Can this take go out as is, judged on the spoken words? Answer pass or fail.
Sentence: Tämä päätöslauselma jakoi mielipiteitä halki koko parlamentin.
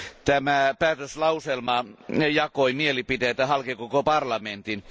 pass